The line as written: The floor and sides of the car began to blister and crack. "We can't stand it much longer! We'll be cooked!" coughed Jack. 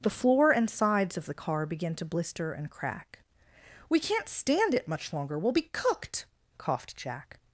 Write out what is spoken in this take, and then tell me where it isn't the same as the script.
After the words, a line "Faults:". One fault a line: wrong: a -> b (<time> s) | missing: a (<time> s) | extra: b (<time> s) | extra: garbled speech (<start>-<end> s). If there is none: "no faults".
The floor and sides of the car began to blister and crack. "We can't stand it much longer! We'll be cooked!" coughed Jack.
Faults:
no faults